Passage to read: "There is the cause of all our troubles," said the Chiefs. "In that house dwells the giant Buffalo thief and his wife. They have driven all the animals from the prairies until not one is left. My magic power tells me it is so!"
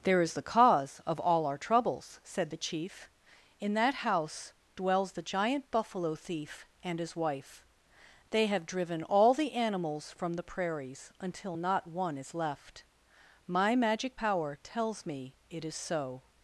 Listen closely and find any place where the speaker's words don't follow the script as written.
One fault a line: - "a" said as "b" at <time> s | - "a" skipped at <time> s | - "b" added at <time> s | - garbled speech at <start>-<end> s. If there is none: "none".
- "Chiefs" said as "Chief" at 2.6 s